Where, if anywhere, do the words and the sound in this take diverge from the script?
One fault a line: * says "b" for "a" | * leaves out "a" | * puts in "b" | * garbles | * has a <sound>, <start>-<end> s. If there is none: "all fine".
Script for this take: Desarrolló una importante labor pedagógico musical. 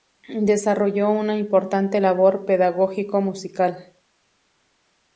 all fine